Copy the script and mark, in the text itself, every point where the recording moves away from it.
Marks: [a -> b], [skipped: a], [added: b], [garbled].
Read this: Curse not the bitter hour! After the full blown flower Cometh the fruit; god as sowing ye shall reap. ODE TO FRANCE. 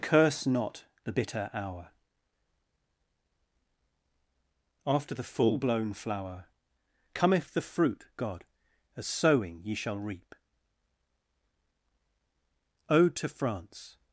Curse not the bitter hour! After the full blown flower Cometh the fruit; god as sowing ye shall reap. ODE TO FRANCE.